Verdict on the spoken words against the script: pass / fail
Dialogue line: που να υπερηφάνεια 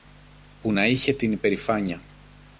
fail